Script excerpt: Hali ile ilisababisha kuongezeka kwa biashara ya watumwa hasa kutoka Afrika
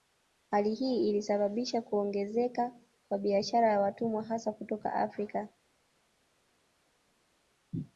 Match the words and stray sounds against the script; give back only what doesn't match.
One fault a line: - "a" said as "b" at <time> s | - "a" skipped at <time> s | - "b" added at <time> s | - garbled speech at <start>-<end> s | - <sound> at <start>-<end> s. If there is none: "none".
- "ile" said as "hii" at 0.7 s